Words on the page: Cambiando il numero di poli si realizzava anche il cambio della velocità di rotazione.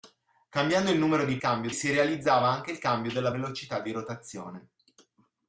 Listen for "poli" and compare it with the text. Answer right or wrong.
wrong